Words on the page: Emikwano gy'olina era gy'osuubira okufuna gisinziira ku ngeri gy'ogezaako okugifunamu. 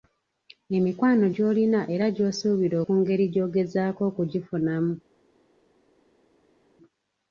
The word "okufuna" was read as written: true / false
false